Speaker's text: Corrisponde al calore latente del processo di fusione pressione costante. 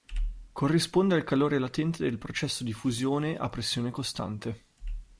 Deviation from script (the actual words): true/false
true